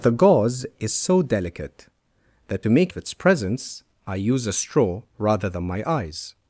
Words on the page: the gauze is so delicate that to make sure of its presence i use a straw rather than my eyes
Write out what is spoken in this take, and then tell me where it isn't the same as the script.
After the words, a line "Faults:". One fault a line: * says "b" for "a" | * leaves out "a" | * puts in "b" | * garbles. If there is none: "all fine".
the gauze is so delicate that to make of its presence i use a straw rather than my eyes
Faults:
* leaves out "sure"